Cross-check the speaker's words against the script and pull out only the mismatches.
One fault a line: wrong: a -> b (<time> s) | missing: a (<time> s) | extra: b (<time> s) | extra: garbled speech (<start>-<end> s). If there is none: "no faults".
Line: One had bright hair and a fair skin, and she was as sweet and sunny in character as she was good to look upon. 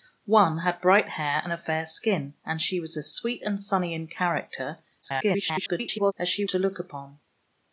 extra: garbled speech (5.0-6.1 s)
missing: was good (6.4 s)